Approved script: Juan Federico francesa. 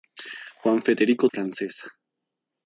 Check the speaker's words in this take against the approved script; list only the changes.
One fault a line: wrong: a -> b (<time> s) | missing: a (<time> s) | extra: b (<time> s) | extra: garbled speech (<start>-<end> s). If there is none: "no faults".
no faults